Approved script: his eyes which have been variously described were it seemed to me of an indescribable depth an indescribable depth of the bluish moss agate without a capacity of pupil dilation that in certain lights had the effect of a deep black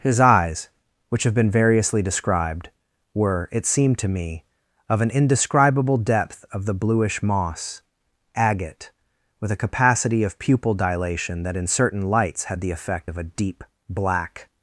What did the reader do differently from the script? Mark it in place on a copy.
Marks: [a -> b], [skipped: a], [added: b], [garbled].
his eyes which have been variously described were it seemed to me of an indescribable depth [skipped: an indescribable depth] of the bluish moss agate [without -> with] a capacity of pupil dilation that in certain lights had the effect of a deep black